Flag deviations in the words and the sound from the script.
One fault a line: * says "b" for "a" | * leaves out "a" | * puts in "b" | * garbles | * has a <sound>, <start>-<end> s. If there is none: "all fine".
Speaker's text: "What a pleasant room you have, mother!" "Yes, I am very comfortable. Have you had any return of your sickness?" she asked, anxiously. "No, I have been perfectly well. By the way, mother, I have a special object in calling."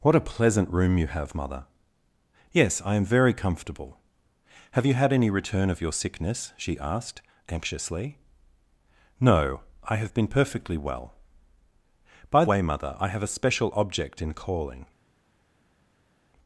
* leaves out "the"